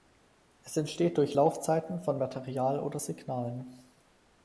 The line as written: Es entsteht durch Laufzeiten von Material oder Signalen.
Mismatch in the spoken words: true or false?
false